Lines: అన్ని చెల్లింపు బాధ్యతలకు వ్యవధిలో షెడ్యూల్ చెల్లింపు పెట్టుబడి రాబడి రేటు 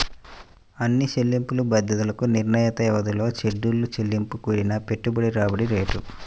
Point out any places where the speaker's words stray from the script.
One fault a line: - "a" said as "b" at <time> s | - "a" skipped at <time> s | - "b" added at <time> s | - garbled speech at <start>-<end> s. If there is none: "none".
- "నిర్ణీత" added at 2.3 s
- "కూడిన" added at 4.5 s